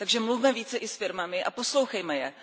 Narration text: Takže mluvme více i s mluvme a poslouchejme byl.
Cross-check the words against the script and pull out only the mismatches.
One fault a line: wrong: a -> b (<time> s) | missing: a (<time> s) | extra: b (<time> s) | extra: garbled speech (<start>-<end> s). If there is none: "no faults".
wrong: mluvme -> firmami (1.0 s)
wrong: byl -> je (2.2 s)